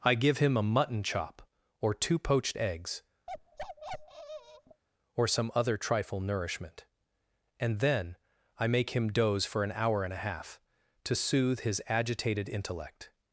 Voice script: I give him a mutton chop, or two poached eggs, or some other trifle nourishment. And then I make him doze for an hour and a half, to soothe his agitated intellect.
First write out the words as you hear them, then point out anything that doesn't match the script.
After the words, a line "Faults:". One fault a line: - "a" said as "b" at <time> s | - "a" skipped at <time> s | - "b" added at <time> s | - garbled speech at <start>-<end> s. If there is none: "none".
I give him a mutton chop, or two poached eggs, or some other trifle nourishment. And then I make him doze for an hour and a half, to soothe his agitated intellect.
Faults:
none